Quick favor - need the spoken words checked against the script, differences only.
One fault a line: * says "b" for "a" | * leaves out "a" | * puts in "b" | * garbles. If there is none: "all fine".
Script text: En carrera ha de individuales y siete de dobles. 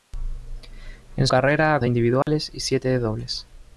all fine